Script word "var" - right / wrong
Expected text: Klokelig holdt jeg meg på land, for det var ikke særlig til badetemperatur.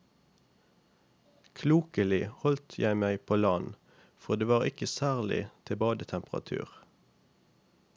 right